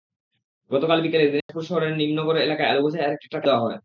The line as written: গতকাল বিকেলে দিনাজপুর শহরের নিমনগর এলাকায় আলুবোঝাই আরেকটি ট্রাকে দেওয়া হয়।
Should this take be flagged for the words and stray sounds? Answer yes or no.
yes